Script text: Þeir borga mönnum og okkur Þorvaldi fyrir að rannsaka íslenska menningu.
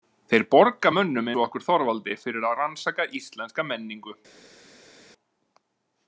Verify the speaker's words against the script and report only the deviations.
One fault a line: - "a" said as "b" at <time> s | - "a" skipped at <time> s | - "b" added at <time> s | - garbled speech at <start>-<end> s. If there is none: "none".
none